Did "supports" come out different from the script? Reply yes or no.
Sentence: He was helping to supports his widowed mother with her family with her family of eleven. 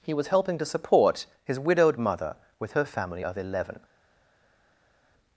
yes